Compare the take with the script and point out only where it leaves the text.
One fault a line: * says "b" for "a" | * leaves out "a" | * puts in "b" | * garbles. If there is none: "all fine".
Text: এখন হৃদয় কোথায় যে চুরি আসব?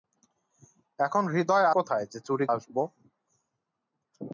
all fine